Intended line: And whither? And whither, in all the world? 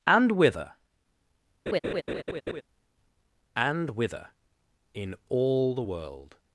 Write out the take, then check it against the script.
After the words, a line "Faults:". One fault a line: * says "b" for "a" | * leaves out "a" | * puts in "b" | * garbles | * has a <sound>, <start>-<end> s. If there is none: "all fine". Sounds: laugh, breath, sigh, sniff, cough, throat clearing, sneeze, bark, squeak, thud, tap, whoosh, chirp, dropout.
And whither? And whither, in all the world?
Faults:
* has a laugh, 1.7-2.6 s